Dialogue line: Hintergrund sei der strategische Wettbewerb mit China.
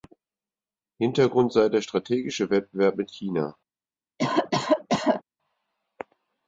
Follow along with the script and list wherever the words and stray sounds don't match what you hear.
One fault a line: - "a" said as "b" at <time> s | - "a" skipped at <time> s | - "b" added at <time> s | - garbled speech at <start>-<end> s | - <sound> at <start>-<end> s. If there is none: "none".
- cough at 4.2-5.2 s